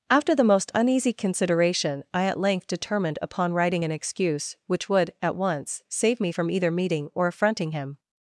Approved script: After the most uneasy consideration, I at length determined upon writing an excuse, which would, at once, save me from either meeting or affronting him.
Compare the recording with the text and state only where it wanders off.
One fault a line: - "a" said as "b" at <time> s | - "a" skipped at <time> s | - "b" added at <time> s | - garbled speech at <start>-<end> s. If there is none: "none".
none